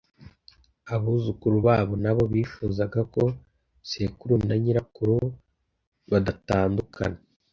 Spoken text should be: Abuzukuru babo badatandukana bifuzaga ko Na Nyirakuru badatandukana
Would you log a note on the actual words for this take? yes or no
yes